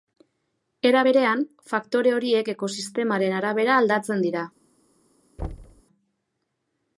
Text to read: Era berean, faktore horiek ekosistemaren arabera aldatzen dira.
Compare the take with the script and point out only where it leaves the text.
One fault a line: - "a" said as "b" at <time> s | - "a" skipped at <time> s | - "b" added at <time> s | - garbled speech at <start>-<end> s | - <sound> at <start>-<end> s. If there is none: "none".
- thud at 5.4-5.8 s